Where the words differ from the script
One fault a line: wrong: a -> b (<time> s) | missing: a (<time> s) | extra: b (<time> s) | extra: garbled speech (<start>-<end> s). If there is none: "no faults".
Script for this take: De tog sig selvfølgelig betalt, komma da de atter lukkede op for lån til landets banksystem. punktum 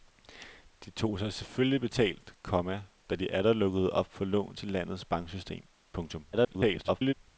extra: garbled speech (6.3-7.1 s)